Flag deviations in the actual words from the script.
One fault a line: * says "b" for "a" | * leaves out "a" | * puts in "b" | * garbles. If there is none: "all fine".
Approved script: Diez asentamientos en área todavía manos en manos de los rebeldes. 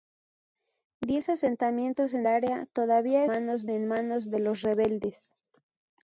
all fine